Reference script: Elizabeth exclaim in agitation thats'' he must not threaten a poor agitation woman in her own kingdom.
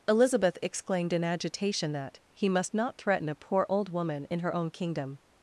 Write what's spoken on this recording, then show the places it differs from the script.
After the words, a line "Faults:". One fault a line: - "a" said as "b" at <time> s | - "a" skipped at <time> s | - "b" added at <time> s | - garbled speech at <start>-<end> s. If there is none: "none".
Elizabeth exclaimed in agitation that'' he must not threaten a poor old woman in her own kingdom.
Faults:
- "exclaim" said as "exclaimed" at 0.6 s
- "thats" said as "that" at 1.9 s
- "agitation" said as "old" at 3.7 s